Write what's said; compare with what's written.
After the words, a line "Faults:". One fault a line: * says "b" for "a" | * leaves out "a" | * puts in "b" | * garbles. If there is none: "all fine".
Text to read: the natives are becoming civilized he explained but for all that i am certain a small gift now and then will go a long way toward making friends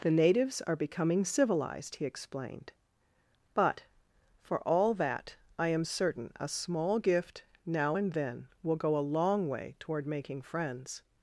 the natives are becoming civilized he explained but for all that i am certain a small gift now and then will go a long way toward making friends
Faults:
all fine